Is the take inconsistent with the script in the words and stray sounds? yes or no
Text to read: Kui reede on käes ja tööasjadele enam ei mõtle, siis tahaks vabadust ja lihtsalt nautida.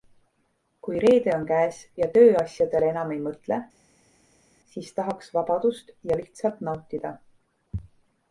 no